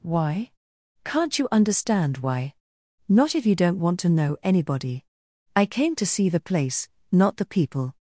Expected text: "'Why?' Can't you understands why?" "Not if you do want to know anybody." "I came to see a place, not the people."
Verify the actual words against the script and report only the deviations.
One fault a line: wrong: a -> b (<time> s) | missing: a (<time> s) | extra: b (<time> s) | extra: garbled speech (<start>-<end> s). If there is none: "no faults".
wrong: understands -> understand (1.5 s)
wrong: do -> don't (3.5 s)
wrong: a -> the (6.3 s)